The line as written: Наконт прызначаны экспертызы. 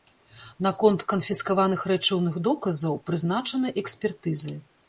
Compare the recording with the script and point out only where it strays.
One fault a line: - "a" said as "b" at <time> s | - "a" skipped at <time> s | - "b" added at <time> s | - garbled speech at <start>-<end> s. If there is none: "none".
- "канфіскаваных рэчыўных доказаў" added at 1.1 s